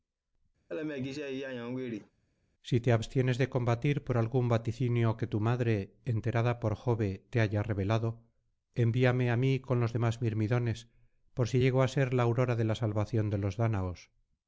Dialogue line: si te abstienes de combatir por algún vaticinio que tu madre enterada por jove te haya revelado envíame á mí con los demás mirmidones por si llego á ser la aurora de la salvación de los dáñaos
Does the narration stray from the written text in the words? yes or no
no